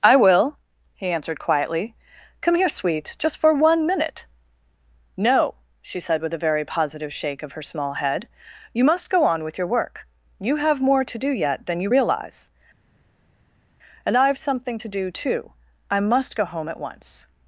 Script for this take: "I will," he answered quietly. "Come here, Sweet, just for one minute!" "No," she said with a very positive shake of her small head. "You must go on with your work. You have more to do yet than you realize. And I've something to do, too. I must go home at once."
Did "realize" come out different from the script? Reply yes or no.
no